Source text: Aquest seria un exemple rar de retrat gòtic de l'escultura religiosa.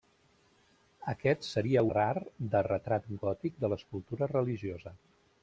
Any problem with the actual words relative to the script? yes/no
yes